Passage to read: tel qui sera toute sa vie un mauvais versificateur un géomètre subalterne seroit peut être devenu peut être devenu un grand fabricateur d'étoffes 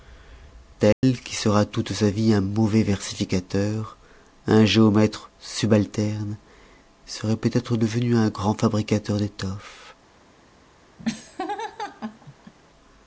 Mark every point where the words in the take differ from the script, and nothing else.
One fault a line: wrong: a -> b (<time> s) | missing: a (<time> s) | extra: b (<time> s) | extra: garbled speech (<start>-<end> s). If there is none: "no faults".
missing: peut être devenu (8.2 s)